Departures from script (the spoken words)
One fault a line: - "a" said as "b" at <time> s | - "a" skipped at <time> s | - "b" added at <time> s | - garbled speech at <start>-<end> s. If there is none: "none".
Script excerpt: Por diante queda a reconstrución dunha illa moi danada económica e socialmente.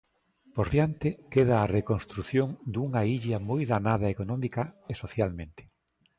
none